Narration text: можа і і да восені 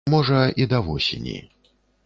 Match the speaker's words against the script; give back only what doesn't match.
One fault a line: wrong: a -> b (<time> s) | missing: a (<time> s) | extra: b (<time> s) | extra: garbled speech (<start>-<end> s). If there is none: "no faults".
missing: і (0.7 s)